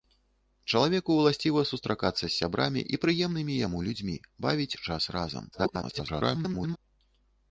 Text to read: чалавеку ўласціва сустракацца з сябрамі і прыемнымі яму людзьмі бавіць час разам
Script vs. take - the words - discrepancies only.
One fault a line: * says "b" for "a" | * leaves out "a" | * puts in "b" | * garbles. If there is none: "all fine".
* garbles